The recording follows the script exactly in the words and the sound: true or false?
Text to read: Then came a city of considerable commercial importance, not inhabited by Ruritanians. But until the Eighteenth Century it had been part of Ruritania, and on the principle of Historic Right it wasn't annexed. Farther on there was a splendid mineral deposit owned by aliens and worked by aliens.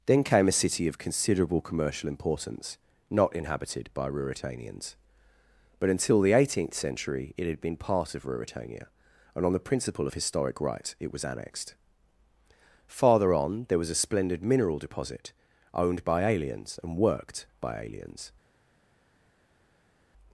false